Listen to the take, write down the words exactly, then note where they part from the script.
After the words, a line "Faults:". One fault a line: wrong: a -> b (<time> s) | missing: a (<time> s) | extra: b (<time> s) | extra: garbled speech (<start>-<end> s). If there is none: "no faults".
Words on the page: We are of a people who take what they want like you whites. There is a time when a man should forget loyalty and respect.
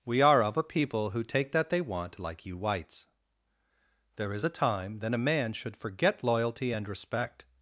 We are of a people who take that they want like you whites. There is a time then a man should forget loyalty and respect.
Faults:
wrong: what -> that (1.5 s)
wrong: when -> then (5.0 s)